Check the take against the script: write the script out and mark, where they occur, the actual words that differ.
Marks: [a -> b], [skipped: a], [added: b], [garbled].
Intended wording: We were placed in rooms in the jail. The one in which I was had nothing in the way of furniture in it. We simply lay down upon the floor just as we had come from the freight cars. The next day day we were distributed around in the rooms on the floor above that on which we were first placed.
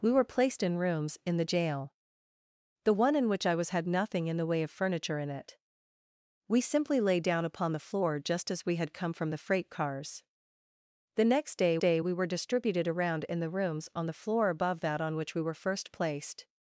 We were placed in rooms in the jail. The one in which I was had nothing in the way of furniture in it. We simply lay down upon the floor just as we had come from the freight cars. The next day day we were distributed around in the rooms on the floor above that on which we were first placed.